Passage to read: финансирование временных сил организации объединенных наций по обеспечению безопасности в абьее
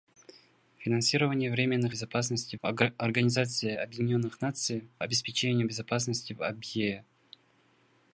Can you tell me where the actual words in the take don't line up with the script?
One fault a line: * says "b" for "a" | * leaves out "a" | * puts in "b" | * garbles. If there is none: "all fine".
* says "безопасности" for "сил"
* leaves out "по"